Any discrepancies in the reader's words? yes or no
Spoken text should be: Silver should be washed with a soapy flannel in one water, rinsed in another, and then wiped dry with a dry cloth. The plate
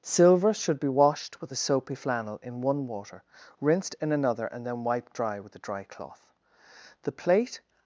no